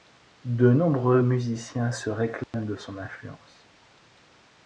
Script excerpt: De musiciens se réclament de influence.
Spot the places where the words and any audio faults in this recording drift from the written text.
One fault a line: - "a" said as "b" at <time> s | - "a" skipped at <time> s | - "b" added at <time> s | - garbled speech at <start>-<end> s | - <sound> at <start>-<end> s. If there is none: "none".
- "nombreux" added at 0.7 s
- dropout at 2.4-2.5 s
- "son" added at 2.8 s